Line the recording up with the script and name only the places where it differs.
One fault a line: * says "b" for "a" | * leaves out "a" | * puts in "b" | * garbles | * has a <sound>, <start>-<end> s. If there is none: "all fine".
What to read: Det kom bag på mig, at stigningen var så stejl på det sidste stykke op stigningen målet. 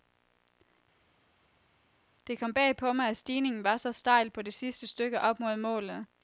* says "mod" for "stigningen"